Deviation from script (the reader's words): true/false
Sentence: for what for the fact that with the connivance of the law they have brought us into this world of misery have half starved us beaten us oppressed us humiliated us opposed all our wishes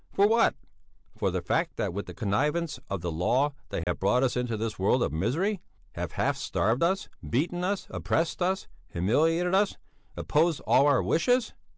false